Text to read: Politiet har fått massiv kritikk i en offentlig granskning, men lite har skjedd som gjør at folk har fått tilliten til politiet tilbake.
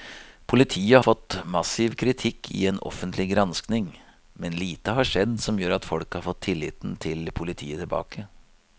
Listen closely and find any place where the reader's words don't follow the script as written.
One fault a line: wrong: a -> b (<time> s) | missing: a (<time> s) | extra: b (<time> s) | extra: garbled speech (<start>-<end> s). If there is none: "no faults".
missing: har (1.0 s)